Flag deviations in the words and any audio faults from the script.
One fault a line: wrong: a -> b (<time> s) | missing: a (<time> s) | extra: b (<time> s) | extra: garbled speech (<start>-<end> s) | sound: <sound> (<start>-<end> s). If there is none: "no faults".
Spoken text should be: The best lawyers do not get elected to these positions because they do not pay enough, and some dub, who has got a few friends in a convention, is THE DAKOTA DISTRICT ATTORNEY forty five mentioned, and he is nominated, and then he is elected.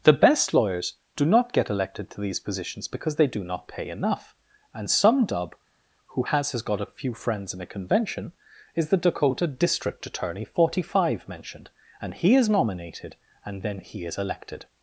extra: has (6.5 s)